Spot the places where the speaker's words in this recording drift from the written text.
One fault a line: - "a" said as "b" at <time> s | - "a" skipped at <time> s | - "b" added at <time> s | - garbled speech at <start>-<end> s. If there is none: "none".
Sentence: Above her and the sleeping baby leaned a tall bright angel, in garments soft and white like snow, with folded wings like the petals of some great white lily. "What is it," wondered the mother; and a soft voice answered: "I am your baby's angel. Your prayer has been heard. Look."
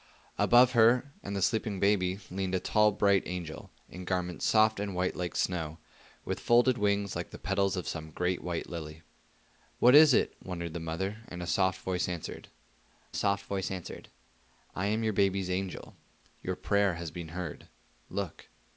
- "soft voice answered" added at 13.1 s